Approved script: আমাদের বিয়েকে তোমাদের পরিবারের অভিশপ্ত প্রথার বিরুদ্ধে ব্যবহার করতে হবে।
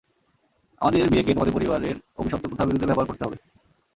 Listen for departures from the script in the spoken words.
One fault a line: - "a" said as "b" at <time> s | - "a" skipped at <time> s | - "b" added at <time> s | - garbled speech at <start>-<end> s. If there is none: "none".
none